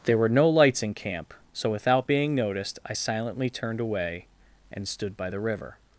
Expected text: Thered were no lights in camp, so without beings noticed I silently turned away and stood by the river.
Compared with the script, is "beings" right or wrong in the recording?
wrong